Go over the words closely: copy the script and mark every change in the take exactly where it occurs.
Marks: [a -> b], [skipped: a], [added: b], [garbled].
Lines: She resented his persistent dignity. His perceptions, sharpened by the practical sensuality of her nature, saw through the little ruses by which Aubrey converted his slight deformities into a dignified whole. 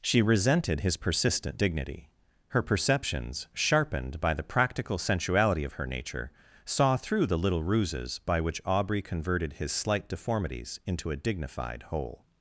She resented his persistent dignity. [His -> Her] perceptions, sharpened by the practical sensuality of her nature, saw through the little ruses by which Aubrey converted his slight deformities into a dignified whole.